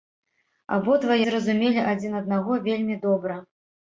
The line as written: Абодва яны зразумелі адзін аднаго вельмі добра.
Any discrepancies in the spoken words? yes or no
yes